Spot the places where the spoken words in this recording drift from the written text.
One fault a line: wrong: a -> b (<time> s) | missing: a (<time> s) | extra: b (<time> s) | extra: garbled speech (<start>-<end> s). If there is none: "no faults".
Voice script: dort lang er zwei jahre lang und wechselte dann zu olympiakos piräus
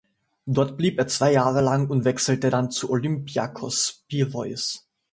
wrong: lang -> blieb (0.8 s)